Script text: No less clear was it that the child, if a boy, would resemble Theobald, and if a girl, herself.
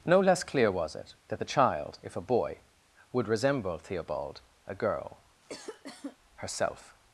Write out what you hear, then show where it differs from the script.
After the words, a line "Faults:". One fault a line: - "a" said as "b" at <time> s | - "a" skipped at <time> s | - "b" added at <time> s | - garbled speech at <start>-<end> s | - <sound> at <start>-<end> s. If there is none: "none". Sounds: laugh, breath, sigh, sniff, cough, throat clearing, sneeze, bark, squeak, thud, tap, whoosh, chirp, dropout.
No less clear was it that the child, if a boy, would resemble Theobald, a girl, herself.
Faults:
- "and if" skipped at 4.4 s
- cough at 5.4-6.2 s